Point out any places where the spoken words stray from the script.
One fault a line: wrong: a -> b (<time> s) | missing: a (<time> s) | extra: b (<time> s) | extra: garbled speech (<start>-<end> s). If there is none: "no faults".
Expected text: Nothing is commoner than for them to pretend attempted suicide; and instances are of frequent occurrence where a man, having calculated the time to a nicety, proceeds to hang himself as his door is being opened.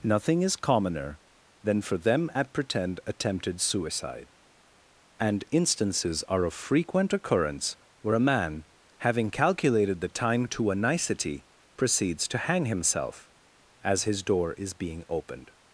wrong: to -> at (2.3 s)